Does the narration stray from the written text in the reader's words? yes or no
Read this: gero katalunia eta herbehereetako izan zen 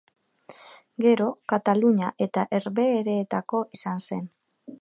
no